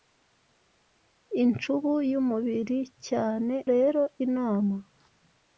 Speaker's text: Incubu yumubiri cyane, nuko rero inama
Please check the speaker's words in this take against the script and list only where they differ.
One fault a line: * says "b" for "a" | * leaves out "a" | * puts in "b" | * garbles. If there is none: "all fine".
* leaves out "nuko"